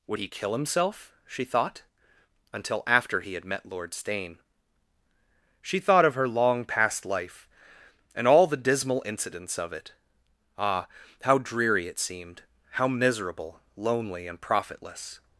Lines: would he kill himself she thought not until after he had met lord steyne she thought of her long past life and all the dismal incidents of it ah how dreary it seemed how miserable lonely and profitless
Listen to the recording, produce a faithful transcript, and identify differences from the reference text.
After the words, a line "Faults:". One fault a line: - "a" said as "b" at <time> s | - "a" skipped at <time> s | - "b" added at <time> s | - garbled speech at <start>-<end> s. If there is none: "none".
would he kill himself she thought until after he had met lord steyne she thought of her long past life and all the dismal incidents of it ah how dreary it seemed how miserable lonely and profitless
Faults:
- "not" skipped at 1.8 s